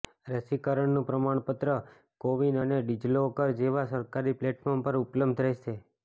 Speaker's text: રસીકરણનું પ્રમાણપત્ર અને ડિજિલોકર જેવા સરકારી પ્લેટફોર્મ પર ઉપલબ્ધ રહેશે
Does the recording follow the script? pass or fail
fail